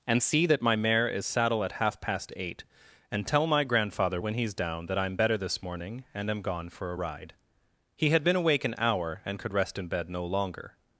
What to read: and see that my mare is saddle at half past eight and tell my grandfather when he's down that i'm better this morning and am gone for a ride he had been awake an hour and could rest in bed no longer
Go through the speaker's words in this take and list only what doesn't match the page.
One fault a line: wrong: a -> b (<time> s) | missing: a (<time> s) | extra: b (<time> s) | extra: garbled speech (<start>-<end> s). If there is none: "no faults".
no faults